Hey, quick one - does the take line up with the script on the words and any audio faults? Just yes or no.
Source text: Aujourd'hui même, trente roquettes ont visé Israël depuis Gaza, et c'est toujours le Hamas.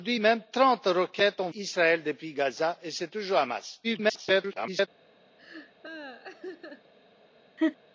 no